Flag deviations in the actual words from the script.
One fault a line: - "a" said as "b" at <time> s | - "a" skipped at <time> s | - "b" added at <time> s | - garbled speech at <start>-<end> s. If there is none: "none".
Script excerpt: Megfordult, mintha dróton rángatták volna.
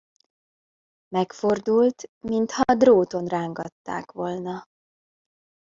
none